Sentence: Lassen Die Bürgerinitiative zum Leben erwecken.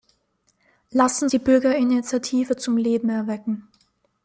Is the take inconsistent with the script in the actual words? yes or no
no